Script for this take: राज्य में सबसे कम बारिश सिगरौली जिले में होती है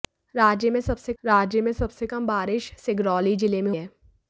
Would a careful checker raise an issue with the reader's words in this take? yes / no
yes